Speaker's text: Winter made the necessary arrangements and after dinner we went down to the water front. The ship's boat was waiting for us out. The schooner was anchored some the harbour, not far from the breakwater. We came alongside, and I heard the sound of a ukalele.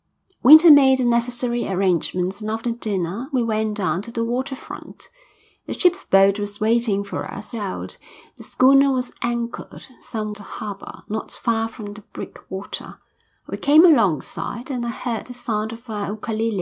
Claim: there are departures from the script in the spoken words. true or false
false